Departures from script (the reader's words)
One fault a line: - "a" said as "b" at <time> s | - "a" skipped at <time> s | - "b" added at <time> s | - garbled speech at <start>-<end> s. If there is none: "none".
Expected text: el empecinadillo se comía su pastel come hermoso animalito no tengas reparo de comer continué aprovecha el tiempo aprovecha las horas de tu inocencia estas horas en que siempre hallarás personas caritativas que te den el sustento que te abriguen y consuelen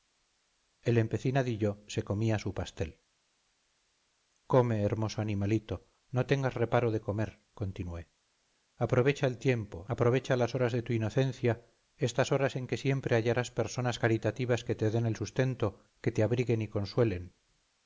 none